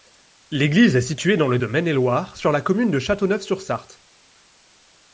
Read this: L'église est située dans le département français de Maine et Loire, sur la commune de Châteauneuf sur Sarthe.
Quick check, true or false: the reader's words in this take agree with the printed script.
false